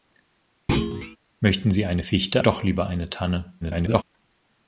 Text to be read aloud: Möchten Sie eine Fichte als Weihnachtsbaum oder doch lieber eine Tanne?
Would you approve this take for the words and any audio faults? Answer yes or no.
no